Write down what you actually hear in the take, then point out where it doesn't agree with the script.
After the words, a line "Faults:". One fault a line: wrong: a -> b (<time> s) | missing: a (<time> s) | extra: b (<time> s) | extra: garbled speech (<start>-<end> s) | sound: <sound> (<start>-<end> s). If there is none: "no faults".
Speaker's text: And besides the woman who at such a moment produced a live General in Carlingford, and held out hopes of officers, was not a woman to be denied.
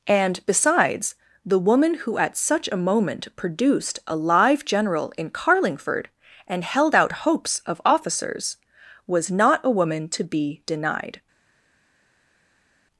And besides the woman who at such a moment produced a live General in Carlingford, and held out hopes of officers, was not a woman to be denied.
Faults:
no faults